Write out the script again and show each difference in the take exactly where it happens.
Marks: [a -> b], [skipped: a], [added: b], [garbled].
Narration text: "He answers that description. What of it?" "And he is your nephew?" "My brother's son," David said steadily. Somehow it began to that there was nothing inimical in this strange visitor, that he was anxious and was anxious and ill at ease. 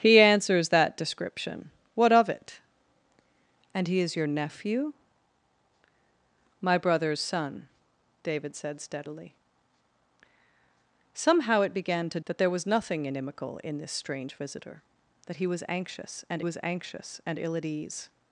"He answers that description. What of it?" "And he is your nephew?" "My brother's son," David said steadily. Somehow it began to that there was nothing inimical in this strange visitor, that he was anxious and was anxious and ill at ease.